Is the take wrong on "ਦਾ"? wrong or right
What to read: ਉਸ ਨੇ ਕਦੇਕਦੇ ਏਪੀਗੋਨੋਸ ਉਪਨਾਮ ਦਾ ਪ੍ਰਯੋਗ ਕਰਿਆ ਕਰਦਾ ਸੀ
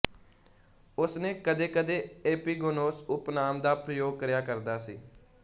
right